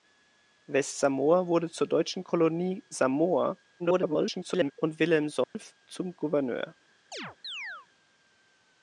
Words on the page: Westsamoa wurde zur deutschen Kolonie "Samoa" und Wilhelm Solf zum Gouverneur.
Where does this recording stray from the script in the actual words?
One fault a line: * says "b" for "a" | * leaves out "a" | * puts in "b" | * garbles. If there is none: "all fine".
* garbles